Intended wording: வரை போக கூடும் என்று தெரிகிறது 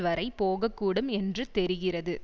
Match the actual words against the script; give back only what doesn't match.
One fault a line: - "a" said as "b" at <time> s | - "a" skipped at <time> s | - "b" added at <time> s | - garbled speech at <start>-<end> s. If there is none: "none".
none